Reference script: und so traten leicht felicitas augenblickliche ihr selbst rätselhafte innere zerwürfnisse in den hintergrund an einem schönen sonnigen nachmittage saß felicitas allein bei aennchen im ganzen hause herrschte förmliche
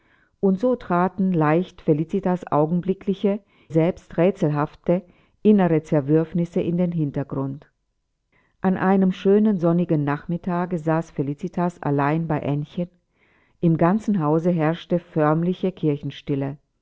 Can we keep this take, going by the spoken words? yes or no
no